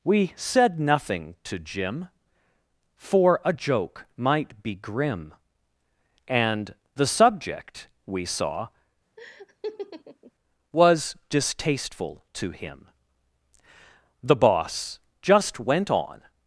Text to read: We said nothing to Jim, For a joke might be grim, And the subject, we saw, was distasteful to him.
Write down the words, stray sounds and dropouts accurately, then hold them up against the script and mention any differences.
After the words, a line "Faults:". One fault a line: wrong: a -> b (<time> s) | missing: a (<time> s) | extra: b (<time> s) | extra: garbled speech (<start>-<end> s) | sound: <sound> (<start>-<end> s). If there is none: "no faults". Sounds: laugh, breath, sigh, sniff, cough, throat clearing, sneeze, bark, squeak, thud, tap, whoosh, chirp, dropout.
We said nothing to Jim, For a joke might be grim, And the subject, we saw, was distasteful to him. The Boss just went on
Faults:
sound: laugh (9.2-10.3 s)
extra: The Boss just went on (14.2 s)